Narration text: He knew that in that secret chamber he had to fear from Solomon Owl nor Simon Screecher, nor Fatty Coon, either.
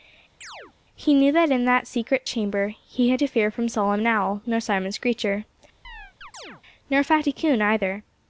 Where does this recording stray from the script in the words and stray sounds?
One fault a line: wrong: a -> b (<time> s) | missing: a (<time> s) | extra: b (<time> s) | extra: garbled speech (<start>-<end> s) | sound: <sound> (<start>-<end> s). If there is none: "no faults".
sound: chirp (0.4-0.7 s)
sound: chirp (5.8-6.6 s)